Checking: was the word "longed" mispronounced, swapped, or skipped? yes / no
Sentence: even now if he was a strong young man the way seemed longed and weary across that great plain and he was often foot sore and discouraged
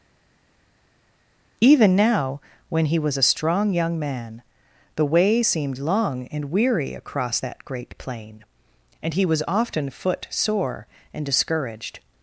yes